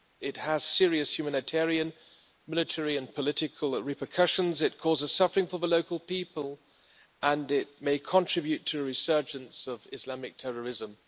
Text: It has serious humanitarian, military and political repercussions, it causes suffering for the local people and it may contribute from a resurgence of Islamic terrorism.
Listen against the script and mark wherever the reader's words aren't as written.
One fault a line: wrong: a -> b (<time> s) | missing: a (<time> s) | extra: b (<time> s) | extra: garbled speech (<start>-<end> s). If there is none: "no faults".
wrong: from -> to (8.7 s)